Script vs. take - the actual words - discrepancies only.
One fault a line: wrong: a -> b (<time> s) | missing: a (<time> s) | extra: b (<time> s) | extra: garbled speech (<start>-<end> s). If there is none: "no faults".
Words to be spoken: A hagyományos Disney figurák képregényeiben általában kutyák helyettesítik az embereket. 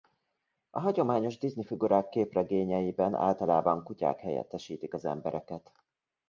no faults